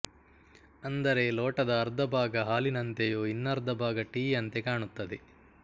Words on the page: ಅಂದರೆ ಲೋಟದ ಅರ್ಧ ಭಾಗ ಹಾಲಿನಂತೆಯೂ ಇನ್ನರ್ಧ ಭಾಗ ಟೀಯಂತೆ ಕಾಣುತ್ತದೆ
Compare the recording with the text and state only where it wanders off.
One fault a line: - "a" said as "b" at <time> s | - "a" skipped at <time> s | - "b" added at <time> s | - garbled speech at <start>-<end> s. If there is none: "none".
none